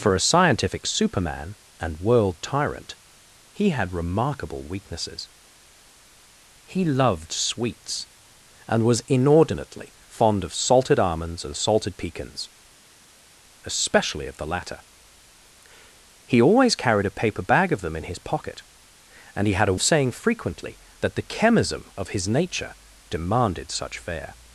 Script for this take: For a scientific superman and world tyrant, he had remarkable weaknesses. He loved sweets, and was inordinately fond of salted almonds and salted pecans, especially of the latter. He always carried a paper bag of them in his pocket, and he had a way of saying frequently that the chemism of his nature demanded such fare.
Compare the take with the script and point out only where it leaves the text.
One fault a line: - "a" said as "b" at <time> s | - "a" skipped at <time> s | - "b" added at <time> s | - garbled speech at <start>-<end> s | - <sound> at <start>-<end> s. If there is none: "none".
- "way" skipped at 19.8 s